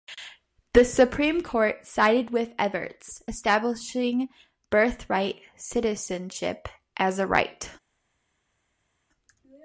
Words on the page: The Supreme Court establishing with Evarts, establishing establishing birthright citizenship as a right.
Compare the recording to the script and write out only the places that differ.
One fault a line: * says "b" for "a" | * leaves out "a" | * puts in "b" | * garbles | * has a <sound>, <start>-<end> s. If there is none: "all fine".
* says "sided" for "establishing"
* leaves out "establishing"